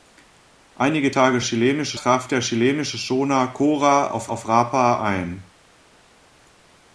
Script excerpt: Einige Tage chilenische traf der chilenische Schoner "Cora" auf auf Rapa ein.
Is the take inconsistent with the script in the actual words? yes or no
no